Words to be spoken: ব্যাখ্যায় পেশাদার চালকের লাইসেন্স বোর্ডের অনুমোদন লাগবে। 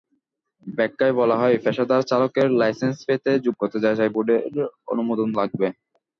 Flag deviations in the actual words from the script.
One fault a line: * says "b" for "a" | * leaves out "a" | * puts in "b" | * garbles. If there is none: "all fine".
* puts in "বলা হয়"
* puts in "পেতে যোগ্যতা যাচাই"